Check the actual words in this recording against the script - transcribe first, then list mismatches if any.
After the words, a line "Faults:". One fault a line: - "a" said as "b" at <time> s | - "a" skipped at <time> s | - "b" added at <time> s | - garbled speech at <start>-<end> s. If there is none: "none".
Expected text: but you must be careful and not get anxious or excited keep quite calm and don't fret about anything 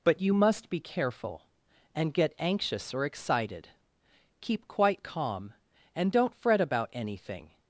but you must be careful and get anxious or excited keep quite calm and don't fret about anything
Faults:
- "not" skipped at 2.1 s